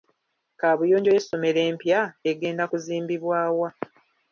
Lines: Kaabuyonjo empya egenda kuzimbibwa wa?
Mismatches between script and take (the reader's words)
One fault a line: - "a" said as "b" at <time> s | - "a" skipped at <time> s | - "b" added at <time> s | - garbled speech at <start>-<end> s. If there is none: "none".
- "y'essomero" added at 1.1 s